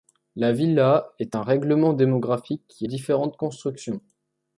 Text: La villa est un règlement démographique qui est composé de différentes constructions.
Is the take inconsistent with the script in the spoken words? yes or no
yes